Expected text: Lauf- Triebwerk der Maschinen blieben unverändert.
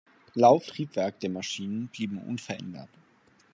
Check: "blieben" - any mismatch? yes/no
no